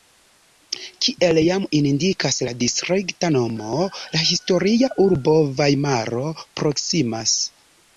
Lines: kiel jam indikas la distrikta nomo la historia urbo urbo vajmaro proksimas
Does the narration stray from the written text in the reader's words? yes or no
yes